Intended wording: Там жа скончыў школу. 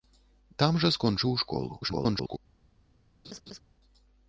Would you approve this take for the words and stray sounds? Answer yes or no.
no